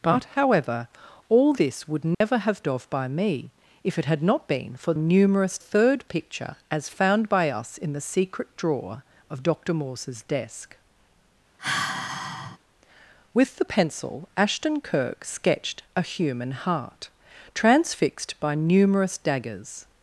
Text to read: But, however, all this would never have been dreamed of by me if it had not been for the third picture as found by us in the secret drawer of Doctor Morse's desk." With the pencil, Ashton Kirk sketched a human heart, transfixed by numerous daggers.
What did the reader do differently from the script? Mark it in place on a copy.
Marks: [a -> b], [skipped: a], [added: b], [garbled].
But, however, all this would never have [skipped: been dreamed] of by me if it had not been for [the -> numerous] third picture as found by us in the secret drawer of Doctor Morse's desk." With the pencil, Ashton Kirk sketched a human heart, transfixed by numerous daggers.